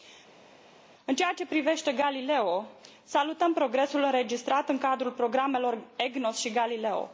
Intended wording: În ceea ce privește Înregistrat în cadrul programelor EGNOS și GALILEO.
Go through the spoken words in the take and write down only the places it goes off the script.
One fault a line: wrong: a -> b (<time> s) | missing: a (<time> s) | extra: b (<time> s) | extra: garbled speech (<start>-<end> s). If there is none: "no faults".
extra: Galileo salutăm progresul (1.9 s)